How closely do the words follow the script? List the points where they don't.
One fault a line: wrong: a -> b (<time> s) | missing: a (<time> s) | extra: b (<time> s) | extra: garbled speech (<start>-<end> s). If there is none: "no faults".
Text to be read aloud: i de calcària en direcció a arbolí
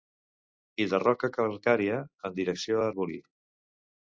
extra: roca (1.0 s)